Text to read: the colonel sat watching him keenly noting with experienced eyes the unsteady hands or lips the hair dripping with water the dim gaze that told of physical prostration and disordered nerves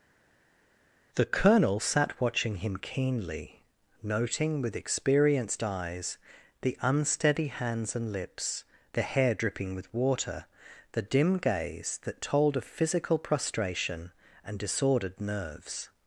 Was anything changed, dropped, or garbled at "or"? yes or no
yes